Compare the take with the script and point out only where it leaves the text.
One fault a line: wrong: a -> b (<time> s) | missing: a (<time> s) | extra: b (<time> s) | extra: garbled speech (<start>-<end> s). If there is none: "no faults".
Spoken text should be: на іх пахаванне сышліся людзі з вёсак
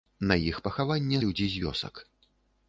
missing: сышліся (1.2 s)